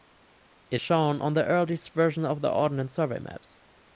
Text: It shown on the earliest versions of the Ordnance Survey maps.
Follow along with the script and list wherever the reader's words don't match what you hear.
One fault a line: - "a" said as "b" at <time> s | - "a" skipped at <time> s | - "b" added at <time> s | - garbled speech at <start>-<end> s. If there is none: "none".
none